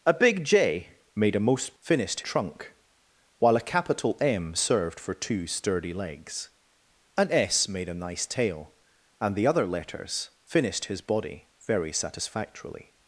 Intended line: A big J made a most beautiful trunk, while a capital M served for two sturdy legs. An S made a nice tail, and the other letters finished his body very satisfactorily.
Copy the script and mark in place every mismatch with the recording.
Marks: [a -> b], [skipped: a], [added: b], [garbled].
A big J made a most [beautiful -> finished] trunk, while a capital M served for two sturdy legs. An S made a nice tail, and the other letters finished his body very satisfactorily.